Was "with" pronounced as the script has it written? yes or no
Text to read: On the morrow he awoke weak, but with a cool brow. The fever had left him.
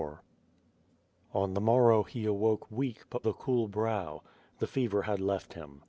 no